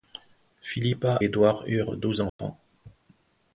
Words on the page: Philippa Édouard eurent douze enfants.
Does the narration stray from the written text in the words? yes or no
no